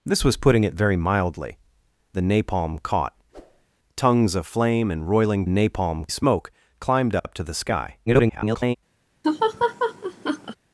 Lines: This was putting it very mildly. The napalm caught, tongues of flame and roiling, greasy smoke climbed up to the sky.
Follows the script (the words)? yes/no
no